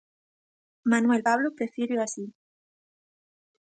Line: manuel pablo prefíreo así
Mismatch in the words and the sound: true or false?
false